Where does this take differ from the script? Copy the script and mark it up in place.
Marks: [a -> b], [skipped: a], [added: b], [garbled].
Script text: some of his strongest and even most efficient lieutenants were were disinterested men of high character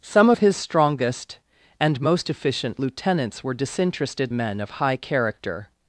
some of his strongest and [skipped: even] most efficient lieutenants were [skipped: were] disinterested men of high character